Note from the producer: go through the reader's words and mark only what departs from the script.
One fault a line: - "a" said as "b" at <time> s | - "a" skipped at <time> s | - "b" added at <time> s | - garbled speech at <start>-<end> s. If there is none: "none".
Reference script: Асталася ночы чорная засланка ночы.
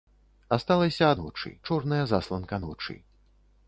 none